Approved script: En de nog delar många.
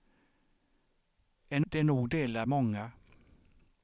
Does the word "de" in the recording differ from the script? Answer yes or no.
no